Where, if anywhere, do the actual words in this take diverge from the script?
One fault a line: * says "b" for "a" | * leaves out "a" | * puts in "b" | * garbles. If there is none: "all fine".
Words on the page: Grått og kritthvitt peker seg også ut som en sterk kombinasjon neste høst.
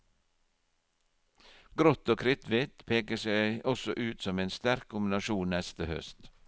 all fine